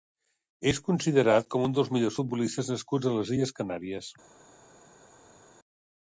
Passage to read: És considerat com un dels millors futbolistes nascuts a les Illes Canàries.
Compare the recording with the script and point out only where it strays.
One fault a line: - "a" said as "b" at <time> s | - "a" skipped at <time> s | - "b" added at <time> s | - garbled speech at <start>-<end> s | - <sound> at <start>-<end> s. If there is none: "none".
none